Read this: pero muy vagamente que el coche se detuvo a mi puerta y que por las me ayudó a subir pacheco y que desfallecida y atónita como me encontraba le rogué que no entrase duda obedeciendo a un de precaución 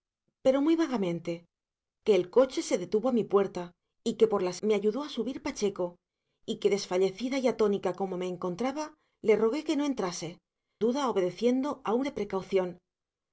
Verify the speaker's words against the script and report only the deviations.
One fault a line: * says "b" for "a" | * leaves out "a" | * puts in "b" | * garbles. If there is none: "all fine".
all fine